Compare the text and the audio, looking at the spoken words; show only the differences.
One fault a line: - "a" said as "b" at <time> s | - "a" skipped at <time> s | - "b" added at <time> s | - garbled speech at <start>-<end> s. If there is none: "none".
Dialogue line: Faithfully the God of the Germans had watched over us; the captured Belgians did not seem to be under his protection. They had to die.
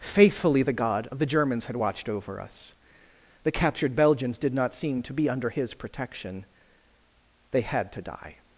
none